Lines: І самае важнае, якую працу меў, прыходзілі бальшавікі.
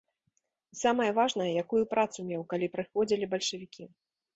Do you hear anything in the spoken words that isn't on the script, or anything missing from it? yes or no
yes